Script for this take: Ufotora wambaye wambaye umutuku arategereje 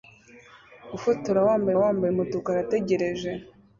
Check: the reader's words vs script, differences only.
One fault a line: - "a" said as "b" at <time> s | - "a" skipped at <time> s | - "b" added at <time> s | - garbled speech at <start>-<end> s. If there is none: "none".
none